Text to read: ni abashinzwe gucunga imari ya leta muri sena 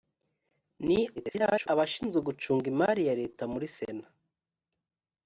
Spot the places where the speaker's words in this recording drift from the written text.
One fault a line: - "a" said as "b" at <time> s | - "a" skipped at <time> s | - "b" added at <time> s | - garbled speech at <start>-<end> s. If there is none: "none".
- garbled speech at 1.2-1.7 s